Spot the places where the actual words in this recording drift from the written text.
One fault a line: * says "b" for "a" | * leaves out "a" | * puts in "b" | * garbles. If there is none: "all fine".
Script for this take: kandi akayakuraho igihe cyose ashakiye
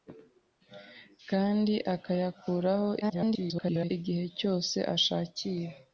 * garbles